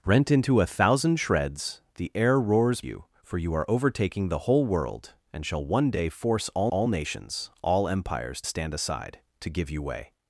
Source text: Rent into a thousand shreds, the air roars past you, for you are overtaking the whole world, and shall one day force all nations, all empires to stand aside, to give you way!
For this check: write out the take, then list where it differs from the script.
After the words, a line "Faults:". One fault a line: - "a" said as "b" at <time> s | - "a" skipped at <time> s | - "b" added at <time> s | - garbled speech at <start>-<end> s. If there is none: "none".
Rent into a thousand shreds, the air roars you, for you are overtaking the whole world, and shall one day force all all nations, all empires stand aside, to give you way!
Faults:
- "past" skipped at 2.8 s
- "all" added at 6.7 s
- "to" skipped at 8.4 s